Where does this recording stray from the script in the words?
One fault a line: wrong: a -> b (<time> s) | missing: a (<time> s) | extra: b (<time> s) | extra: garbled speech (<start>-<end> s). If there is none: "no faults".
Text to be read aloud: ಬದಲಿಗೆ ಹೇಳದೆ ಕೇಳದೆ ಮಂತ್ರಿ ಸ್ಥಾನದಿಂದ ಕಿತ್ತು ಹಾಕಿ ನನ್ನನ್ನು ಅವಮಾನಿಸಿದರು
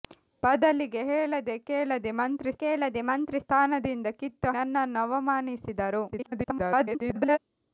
extra: ಕೇಳದೆ ಮಂತ್ರಿ (2.6 s)
missing: ಹಾಕಿ (4.5 s)
extra: garbled speech (6.1-7.4 s)